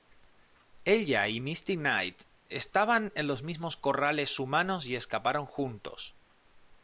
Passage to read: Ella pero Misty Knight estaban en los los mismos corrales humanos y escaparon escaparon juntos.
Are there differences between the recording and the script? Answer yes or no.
yes